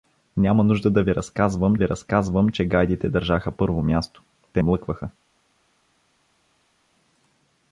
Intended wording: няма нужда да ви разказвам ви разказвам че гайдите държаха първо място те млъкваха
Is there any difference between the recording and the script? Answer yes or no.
no